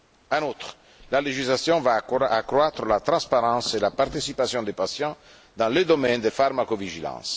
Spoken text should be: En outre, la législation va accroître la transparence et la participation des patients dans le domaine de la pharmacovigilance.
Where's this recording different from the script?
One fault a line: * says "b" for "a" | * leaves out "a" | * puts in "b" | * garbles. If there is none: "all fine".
* leaves out "la"